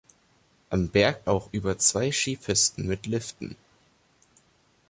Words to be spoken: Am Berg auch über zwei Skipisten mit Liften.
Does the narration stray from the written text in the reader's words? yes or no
no